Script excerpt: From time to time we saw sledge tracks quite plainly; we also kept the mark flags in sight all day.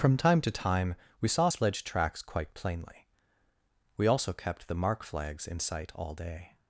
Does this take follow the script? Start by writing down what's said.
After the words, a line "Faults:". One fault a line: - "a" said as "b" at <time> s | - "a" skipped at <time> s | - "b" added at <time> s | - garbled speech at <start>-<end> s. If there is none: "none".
From time to time we saw sledge tracks quite plainly; we also kept the mark flags in sight all day.
Faults:
none